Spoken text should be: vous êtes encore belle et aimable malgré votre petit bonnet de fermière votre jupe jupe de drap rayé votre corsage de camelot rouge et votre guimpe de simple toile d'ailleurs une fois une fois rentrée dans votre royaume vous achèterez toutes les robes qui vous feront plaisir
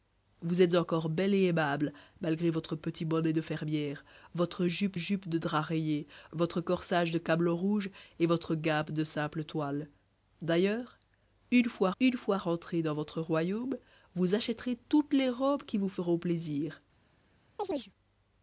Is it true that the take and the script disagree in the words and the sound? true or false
true